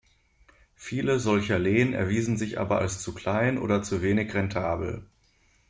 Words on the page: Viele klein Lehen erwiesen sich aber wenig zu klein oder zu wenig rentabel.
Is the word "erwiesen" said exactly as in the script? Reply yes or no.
yes